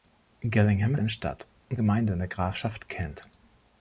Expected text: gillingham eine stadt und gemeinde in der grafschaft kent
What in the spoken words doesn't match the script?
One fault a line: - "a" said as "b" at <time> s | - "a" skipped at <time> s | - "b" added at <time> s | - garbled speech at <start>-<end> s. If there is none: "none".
none